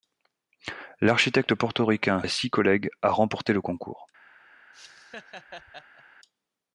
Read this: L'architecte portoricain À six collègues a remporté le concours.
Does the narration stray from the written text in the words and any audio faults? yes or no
yes